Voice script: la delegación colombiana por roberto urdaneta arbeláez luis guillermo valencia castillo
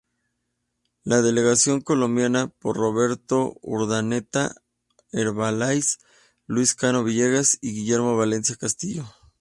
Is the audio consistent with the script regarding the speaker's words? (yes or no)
no